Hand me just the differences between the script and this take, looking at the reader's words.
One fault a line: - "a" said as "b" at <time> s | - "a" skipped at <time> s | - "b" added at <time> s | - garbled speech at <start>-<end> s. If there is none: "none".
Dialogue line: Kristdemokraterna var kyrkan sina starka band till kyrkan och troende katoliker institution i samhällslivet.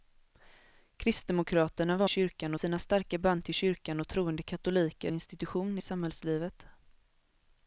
none